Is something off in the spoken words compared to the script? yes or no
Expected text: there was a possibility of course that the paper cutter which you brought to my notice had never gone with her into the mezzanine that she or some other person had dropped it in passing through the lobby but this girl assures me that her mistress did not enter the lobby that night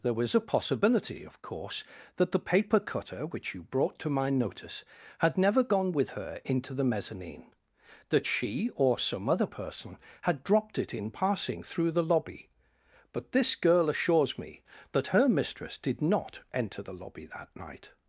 no